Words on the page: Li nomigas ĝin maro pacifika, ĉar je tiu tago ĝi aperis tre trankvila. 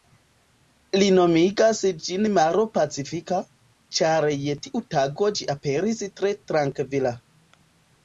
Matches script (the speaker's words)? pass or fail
pass